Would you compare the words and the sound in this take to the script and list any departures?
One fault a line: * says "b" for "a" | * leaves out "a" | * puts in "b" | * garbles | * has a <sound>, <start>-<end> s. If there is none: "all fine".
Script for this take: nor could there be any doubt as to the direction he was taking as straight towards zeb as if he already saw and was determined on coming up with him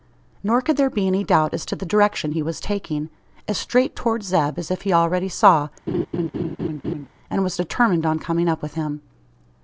* has a laugh, 5.9-7.1 s